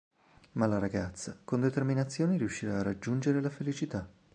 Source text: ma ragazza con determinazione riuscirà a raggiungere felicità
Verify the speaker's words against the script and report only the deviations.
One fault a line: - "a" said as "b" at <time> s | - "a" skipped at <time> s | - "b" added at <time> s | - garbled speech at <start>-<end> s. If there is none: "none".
- "la" added at 0.7 s
- "la" added at 3.4 s